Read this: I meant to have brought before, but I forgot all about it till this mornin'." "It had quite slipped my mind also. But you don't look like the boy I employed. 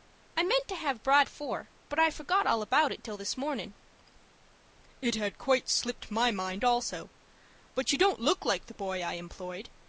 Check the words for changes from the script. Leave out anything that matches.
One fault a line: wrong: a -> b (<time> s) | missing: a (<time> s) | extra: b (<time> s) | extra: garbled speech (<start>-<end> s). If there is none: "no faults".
no faults